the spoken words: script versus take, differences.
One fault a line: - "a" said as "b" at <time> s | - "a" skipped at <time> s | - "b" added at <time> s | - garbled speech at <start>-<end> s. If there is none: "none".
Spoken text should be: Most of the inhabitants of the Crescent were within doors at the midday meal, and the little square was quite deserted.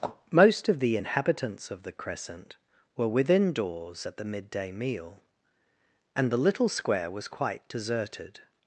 none